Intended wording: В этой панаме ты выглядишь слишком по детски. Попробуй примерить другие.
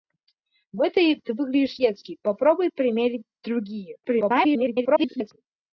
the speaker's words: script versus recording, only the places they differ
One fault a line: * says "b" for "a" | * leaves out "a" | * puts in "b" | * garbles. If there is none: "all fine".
* leaves out "панаме"
* leaves out "слишком по"
* garbles